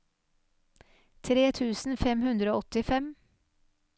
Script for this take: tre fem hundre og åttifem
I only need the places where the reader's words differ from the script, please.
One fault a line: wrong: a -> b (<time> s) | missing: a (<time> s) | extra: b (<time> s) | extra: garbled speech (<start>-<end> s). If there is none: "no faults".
extra: tusen (1.6 s)